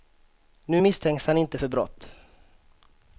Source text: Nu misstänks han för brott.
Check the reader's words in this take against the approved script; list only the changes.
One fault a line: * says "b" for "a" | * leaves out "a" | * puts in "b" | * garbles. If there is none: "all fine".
* puts in "inte"